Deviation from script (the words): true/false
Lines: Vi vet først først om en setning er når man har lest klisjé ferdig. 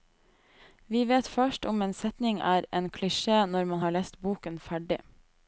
true